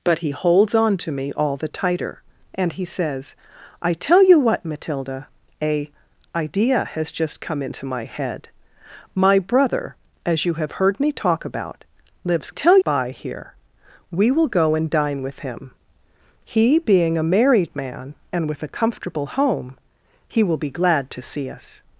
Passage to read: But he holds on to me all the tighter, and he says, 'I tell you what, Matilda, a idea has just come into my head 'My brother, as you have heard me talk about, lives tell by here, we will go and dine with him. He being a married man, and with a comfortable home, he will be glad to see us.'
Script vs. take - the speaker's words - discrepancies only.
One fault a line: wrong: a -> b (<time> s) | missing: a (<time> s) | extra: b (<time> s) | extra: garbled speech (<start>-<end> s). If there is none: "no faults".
no faults